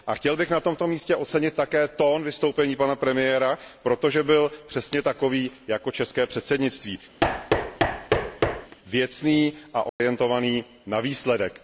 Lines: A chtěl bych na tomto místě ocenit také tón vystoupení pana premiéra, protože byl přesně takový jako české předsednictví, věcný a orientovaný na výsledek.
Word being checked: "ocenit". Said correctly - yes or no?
yes